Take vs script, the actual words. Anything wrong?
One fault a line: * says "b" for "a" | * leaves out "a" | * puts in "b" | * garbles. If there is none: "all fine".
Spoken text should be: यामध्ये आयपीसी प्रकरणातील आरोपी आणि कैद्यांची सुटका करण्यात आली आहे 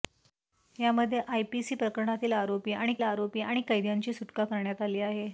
* puts in "आरोपी आणि"